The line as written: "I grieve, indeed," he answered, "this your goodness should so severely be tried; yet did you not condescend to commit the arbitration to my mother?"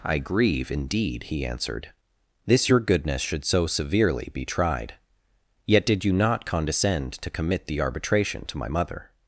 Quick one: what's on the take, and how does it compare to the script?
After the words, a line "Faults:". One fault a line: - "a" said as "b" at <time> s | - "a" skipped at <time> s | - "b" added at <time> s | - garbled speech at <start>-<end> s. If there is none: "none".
"I grieve, indeed," he answered, "this your goodness should so severely be tried; yet did you not condescend to commit the arbitration to my mother?"
Faults:
none